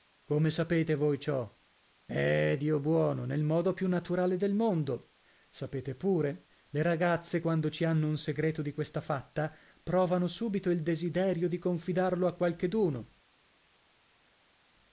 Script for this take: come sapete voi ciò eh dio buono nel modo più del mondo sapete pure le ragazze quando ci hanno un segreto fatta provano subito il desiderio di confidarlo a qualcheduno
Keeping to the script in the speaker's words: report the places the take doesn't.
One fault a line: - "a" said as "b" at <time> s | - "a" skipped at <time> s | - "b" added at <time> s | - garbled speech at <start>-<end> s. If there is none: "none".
- "naturale" added at 3.9 s
- "di questa" added at 8.6 s